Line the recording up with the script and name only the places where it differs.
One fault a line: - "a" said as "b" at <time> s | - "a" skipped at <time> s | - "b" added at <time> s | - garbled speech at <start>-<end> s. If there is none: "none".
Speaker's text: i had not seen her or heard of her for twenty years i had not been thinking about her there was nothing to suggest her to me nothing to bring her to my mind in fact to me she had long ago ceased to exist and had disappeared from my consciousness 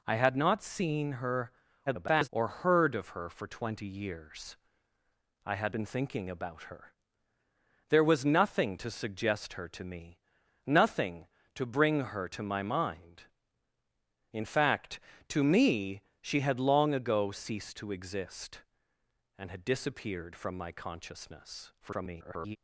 - garbled speech at 1.9-2.3 s
- "not" skipped at 5.7 s
- garbled speech at 21.8-22.6 s